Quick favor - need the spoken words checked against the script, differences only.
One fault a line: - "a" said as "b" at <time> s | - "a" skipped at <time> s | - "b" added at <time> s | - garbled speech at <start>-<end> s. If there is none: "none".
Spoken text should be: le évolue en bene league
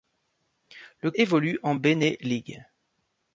none